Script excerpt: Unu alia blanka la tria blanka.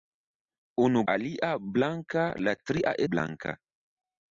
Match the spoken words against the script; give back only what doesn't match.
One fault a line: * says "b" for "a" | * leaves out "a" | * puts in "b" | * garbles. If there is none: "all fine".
all fine